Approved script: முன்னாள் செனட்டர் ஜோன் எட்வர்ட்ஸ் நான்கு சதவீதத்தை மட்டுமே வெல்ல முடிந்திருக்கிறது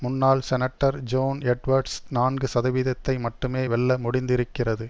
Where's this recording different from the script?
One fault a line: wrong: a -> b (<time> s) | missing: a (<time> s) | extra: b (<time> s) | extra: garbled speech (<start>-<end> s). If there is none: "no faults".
no faults